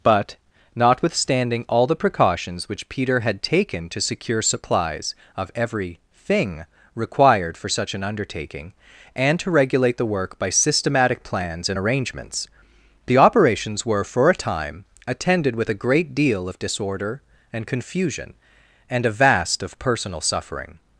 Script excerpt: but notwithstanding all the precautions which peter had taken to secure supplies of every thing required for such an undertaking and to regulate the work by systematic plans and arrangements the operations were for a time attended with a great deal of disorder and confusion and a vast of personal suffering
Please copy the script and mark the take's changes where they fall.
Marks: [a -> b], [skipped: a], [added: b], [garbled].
but notwithstanding all the precautions which peter had taken to secure supplies of every thing required for such an undertaking and to regulate the work by systematic plans and arrangements the operations were for a time attended with a great deal of disorder and confusion and a vast of personal suffering